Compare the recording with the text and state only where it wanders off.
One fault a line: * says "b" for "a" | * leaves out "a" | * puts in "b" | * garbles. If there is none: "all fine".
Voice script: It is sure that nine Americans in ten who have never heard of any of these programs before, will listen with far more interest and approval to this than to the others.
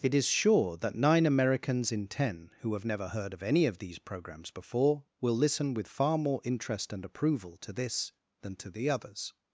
all fine